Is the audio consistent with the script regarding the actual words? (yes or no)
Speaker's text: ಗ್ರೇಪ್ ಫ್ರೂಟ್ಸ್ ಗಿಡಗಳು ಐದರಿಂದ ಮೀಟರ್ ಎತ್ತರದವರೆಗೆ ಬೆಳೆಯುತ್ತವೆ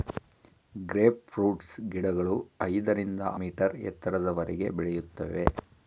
yes